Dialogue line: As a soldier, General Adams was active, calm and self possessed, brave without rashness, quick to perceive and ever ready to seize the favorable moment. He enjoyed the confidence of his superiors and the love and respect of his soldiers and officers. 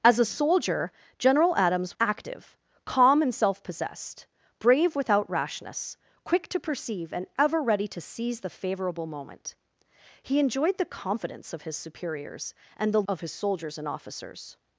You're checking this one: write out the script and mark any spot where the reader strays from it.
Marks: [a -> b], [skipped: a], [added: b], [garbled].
As a soldier, General Adams [skipped: was] active, calm and self possessed, brave without rashness, quick to perceive and ever ready to seize the favorable moment. He enjoyed the confidence of his superiors and the [skipped: love and respect] of his soldiers and officers.